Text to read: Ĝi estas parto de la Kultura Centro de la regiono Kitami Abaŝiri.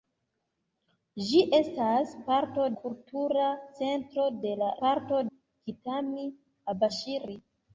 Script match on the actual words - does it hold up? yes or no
no